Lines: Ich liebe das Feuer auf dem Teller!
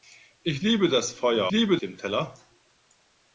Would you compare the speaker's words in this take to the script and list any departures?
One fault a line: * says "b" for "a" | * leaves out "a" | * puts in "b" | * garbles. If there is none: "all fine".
* says "liebe" for "auf"